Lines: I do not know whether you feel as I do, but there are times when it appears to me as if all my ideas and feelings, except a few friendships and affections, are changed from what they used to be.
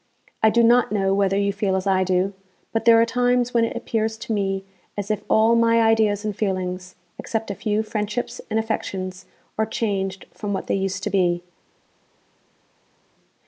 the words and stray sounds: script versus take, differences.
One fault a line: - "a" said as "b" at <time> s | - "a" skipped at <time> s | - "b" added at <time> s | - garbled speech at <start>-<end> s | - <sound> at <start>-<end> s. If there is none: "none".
none